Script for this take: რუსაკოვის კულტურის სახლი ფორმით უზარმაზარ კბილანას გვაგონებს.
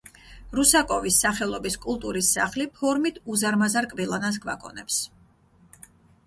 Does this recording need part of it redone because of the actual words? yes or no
yes